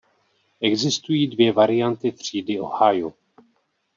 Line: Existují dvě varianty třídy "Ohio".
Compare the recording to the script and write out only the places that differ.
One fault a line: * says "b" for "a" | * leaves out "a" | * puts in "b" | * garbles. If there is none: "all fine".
all fine